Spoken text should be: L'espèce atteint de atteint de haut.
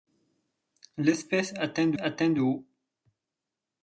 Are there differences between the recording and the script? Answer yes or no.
no